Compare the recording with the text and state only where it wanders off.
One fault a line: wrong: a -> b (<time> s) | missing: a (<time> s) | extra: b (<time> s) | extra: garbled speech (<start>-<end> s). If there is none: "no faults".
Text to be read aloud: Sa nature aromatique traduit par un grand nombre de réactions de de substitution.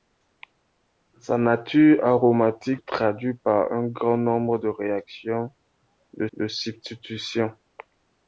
no faults